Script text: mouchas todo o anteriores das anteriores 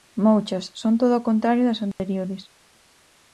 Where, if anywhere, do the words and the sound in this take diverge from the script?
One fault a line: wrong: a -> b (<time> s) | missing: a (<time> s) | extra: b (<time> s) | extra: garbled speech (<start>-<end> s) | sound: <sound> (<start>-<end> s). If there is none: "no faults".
extra: son (0.8 s)
wrong: anteriores -> contrario (1.3 s)
sound: dropout (1.9-2.0 s)